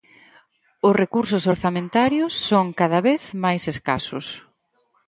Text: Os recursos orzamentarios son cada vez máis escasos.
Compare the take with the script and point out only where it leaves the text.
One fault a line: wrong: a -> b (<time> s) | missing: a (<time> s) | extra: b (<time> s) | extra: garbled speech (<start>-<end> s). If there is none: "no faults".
no faults